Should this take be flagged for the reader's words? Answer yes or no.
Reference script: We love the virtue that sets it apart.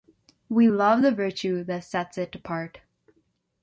no